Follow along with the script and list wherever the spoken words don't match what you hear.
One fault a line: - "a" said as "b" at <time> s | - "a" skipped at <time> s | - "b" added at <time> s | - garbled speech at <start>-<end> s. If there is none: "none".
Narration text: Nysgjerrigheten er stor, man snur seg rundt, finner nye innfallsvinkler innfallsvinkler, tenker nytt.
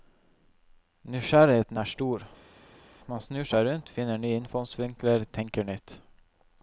- "innfallsvinkler" skipped at 5.3 s